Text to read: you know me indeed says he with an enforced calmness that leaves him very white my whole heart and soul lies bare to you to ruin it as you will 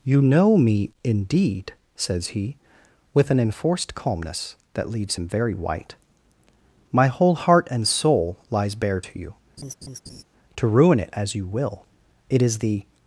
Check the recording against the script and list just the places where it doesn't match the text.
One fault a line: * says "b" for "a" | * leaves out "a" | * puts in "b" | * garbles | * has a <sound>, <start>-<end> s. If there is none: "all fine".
* has a laugh, 9.6-10.2 s
* puts in "it is the"